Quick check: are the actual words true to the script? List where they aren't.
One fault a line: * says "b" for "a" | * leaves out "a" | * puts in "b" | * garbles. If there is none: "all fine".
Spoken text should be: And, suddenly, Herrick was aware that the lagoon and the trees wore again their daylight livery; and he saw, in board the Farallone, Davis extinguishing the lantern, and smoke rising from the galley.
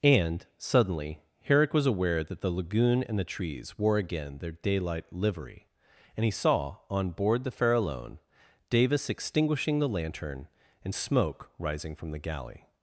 * says "on" for "in"